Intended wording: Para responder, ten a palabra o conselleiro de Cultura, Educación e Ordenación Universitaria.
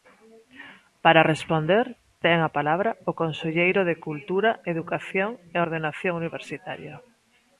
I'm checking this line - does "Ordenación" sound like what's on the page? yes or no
yes